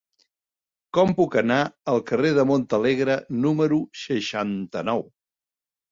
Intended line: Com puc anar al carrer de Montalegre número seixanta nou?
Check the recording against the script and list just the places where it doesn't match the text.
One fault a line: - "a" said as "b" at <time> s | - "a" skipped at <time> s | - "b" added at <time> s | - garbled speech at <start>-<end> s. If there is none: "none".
none